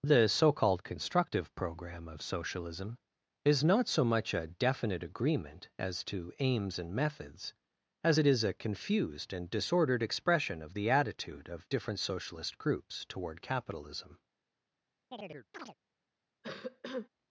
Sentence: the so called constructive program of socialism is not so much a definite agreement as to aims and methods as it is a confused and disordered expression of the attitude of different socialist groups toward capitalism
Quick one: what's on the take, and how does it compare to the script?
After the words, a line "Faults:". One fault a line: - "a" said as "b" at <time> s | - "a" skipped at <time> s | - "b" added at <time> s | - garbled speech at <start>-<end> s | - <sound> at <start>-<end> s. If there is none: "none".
the so called constructive program of socialism is not so much a definite agreement as to aims and methods as it is a confused and disordered expression of the attitude of different socialist groups toward capitalism
Faults:
- chirp at 15.1-15.8 s
- cough at 16.4-17.1 s